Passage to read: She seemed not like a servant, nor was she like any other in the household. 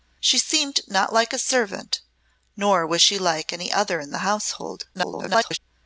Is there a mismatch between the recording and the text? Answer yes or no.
yes